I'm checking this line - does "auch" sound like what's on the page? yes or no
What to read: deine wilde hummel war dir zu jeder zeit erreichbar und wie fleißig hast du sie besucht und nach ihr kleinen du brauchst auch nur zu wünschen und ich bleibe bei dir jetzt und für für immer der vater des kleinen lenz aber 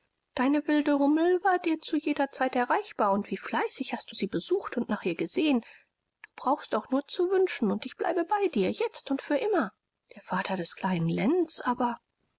yes